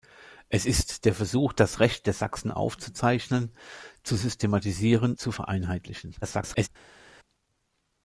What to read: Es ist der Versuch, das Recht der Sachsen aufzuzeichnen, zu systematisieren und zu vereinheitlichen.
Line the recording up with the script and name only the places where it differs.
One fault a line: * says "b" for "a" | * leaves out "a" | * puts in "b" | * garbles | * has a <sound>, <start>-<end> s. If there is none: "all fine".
* leaves out "und"
* garbles